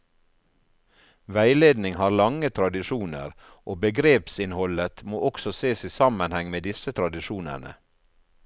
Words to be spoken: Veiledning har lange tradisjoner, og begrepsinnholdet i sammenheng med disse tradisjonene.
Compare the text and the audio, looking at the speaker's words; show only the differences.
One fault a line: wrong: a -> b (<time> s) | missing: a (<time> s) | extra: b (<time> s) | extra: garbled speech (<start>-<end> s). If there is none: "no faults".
extra: må også ses (5.0 s)